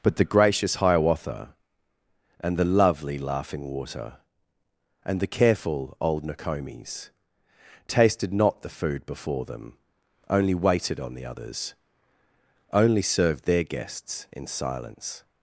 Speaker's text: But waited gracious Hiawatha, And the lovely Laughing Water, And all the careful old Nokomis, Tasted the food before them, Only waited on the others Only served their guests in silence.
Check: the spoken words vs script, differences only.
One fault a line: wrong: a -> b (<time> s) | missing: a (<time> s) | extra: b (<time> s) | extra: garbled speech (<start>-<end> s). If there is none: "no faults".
wrong: waited -> the (0.1 s)
missing: all (5.2 s)
extra: not (8.3 s)